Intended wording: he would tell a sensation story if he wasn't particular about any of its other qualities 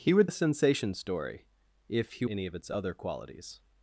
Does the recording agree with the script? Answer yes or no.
no